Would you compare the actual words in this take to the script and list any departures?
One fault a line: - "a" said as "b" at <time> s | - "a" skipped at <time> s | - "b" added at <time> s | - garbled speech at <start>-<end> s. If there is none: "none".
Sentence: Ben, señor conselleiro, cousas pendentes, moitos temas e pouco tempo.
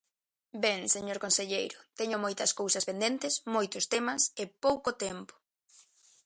- "teño moitas" added at 2.0 s